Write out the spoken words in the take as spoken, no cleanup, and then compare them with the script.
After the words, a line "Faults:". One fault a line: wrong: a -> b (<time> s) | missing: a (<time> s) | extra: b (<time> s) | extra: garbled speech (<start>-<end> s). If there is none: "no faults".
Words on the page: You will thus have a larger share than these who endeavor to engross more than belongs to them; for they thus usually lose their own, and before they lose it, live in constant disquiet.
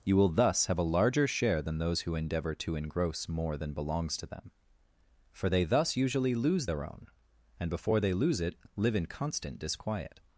You will thus have a larger share than those who endeavor to engross more than belongs to them; for they thus usually lose their own, and before they lose it, live in constant disquiet.
Faults:
wrong: these -> those (1.8 s)